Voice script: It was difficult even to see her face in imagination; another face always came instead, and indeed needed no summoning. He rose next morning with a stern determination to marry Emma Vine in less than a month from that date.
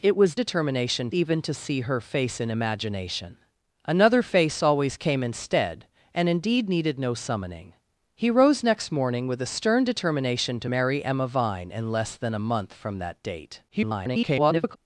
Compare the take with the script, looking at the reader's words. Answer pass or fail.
fail